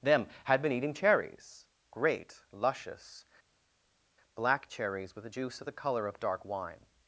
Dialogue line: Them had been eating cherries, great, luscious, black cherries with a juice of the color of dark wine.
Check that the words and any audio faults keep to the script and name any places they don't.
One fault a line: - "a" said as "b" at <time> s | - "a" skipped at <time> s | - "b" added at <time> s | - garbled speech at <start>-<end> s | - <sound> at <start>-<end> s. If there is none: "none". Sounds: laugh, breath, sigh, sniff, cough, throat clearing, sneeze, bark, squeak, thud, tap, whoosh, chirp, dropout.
none